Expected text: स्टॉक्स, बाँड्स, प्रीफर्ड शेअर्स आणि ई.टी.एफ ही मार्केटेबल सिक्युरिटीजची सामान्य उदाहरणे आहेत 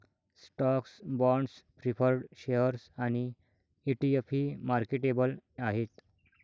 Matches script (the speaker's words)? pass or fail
fail